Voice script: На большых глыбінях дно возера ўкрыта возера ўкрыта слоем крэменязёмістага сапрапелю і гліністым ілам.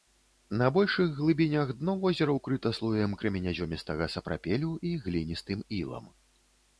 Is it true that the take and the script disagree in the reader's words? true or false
true